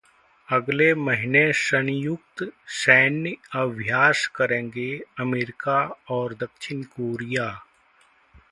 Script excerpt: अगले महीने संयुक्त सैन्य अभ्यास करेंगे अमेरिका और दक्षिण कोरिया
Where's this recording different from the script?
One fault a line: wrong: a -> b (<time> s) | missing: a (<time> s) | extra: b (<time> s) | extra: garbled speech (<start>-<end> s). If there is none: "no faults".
no faults